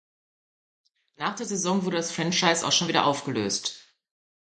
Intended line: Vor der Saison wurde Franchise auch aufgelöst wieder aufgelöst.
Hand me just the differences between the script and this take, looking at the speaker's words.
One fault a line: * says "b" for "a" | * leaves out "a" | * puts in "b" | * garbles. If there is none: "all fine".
* says "Nach" for "Vor"
* puts in "das"
* says "schon" for "aufgelöst"